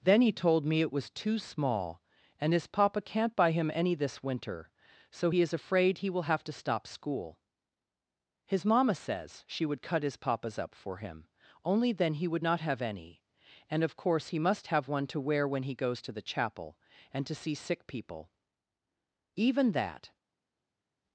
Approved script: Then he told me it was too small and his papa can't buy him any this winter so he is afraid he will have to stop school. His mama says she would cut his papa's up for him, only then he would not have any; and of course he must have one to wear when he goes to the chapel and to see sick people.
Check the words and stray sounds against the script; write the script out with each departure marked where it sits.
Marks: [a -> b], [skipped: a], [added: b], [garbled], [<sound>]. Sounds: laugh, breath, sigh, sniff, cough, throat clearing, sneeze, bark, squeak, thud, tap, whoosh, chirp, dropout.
Then he told me it was too small and his papa can't buy him any this winter so he is afraid he will have to stop school. His mama says she would cut his papa's up for him, only then he would not have any; and of course he must have one to wear when he goes to the chapel and to see sick people. [added: Even that]